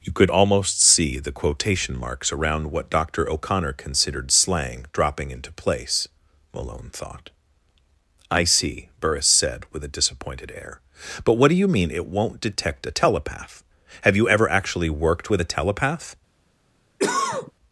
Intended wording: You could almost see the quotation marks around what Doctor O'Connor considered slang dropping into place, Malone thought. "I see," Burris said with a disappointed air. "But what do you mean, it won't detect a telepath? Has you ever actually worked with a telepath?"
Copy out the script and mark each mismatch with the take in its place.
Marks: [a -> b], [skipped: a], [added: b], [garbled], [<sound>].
You could almost see the quotation marks around what Doctor O'Connor considered slang dropping into place, Malone thought. "I see," Burris said with a disappointed air. "But what do you mean, it won't detect a telepath? [Has -> Have] you ever actually worked with a telepath?" [cough]